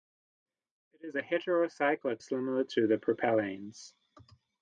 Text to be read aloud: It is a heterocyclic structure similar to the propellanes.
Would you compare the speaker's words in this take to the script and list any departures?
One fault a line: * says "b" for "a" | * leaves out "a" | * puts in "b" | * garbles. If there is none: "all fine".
* leaves out "structure"